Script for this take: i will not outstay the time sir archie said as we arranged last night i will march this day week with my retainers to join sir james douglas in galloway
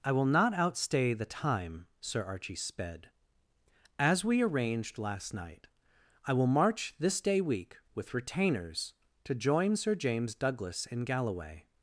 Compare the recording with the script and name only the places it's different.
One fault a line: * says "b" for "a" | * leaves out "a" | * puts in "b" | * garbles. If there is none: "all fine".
* says "sped" for "said"
* leaves out "my"